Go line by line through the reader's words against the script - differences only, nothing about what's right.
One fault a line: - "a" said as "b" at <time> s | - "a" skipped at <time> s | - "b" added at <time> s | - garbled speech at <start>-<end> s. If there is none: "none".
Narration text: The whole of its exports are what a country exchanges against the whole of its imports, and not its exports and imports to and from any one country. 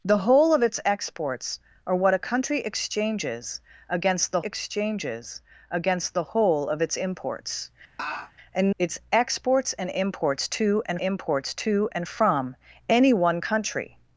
- "exchanges against the" added at 4.4 s
- "not" skipped at 8.7 s
- "imports to and" added at 11.0 s